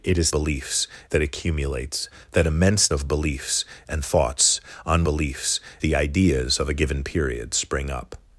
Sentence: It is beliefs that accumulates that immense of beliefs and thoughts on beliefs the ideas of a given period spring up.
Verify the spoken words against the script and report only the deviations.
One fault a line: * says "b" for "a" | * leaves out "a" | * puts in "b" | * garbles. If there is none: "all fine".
all fine